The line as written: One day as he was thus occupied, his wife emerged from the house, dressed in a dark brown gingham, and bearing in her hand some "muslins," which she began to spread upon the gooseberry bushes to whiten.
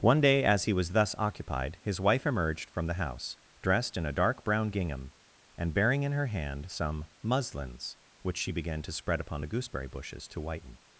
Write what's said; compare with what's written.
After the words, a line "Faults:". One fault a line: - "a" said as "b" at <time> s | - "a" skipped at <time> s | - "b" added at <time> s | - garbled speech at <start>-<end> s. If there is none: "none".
One day as he was thus occupied, his wife emerged from the house, dressed in a dark brown gingham, and bearing in her hand some "muslins," which she began to spread upon the gooseberry bushes to whiten.
Faults:
none